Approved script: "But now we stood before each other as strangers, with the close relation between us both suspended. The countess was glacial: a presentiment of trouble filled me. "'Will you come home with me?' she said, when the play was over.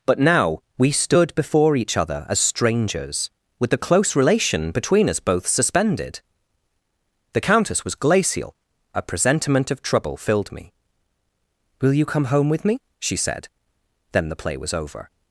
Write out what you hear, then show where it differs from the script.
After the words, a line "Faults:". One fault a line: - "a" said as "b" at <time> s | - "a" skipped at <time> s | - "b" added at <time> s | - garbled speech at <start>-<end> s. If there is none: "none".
"But now we stood before each other as strangers, with the close relation between us both suspended. The countess was glacial: a presentiment of trouble filled me. "'Will you come home with me?' she said, then the play was over.
Faults:
- "when" said as "then" at 14.1 s